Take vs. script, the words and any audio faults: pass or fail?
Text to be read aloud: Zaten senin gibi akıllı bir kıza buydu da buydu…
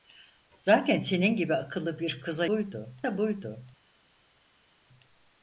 pass